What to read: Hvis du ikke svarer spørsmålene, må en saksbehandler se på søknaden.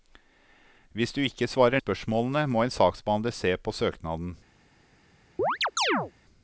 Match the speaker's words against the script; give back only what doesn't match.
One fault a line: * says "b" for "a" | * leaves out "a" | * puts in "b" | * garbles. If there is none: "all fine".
all fine